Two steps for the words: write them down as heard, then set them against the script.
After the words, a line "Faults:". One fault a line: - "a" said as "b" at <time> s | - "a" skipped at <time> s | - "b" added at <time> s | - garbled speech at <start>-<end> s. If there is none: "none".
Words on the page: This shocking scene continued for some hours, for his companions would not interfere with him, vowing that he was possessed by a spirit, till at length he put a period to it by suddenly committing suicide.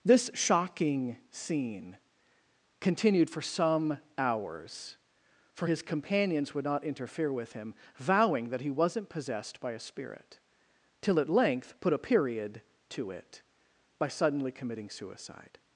This shocking scene continued for some hours, for his companions would not interfere with him, vowing that he wasn't possessed by a spirit, till at length put a period to it by suddenly committing suicide.
Faults:
- "was" said as "wasn't" at 8.7 s
- "he" skipped at 11.7 s